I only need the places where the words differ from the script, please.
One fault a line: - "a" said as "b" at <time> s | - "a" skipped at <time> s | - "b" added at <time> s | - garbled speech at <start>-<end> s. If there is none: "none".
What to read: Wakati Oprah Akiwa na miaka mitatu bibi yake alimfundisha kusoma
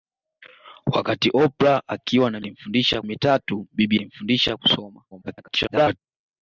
- "miaka" said as "alimfundisha" at 2.4 s
- "yake" skipped at 4.0 s
- garbled speech at 5.1-6.0 s